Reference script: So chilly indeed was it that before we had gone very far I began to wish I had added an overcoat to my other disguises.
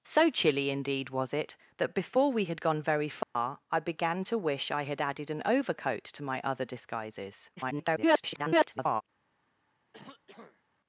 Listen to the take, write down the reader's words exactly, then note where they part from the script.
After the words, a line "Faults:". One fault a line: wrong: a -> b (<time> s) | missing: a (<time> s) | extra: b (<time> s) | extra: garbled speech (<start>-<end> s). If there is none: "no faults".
So chilly indeed was it that before we had gone very far I began to wish I had added an overcoat to my other disguises. [garbled]
Faults:
extra: garbled speech (7.6-9.0 s)